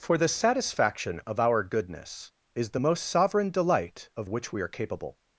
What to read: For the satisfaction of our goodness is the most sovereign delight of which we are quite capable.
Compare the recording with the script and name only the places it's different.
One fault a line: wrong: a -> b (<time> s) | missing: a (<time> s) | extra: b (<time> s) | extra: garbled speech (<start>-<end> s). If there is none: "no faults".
missing: quite (4.7 s)